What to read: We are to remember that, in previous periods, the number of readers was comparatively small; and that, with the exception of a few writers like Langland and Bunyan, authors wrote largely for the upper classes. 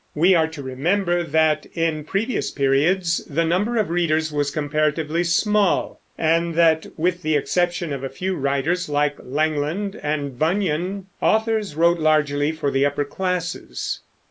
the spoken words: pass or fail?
pass